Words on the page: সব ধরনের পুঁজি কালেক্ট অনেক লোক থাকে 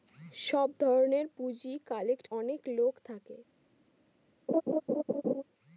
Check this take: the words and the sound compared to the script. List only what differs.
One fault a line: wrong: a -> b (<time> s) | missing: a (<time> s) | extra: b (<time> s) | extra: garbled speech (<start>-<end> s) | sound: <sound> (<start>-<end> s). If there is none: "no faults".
sound: laugh (4.5-5.4 s)